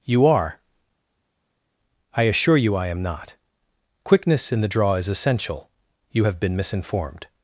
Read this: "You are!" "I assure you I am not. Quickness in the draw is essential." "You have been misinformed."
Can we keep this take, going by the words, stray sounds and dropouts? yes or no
yes